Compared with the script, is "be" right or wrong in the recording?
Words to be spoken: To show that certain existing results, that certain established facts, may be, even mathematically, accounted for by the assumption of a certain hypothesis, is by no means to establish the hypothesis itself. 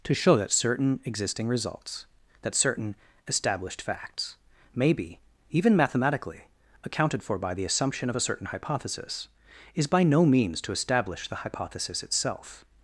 right